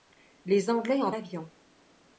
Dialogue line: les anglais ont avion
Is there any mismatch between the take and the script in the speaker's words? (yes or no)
no